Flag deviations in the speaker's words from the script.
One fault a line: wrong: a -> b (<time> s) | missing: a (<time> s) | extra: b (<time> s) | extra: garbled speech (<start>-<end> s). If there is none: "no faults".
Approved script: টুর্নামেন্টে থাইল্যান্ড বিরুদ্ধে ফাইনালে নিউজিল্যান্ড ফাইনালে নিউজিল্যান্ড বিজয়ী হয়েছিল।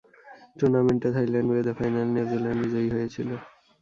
missing: ফাইনালে নিউজিল্যান্ড (2.6 s)